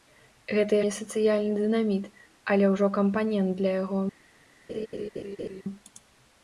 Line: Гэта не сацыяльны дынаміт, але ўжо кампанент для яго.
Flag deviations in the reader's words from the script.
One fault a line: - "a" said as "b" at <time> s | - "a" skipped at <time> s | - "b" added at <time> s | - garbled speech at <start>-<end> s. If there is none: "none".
none